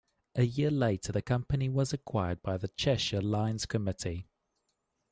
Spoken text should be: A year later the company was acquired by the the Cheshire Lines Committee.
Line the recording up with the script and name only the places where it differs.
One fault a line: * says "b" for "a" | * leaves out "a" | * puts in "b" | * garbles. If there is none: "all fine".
* leaves out "the"